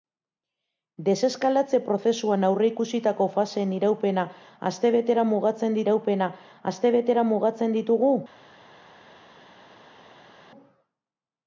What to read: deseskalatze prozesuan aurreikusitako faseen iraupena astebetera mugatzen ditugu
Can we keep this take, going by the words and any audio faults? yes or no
no